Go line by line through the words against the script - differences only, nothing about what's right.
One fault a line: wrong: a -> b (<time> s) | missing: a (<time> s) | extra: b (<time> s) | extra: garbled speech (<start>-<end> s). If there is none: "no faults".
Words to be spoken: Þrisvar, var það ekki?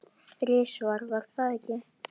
no faults